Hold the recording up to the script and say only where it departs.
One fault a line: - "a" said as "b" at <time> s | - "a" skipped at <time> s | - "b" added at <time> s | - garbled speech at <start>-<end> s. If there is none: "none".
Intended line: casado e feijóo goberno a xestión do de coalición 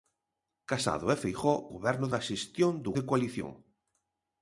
none